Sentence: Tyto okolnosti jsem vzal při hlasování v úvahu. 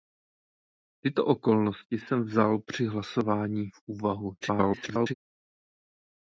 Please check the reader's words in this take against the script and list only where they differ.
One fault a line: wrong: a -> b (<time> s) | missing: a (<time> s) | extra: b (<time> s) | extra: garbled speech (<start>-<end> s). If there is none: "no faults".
extra: garbled speech (4.4-5.1 s)